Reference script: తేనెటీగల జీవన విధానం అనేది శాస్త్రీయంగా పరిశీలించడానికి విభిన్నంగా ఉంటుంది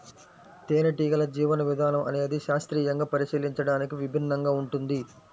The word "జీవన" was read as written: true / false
true